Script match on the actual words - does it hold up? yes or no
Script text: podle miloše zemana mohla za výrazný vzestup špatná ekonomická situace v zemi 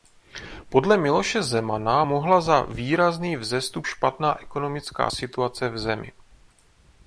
yes